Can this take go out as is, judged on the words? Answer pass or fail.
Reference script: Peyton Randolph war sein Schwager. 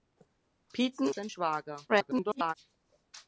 fail